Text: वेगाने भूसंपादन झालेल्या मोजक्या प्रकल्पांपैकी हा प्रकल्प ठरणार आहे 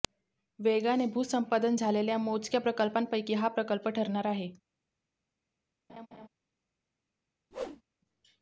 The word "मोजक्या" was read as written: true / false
true